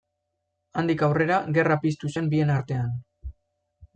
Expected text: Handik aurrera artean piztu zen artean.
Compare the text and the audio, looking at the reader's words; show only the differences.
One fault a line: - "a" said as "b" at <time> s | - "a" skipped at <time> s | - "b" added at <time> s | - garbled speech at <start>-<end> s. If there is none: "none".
- "artean" said as "gerra" at 1.6 s
- "bien" added at 2.3 s